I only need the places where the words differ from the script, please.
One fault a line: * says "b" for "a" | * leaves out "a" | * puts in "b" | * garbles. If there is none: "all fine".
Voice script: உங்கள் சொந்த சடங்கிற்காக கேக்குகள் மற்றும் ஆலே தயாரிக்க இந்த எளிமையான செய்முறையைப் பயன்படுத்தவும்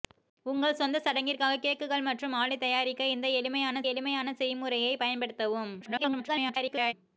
* puts in "எளிமையான"
* garbles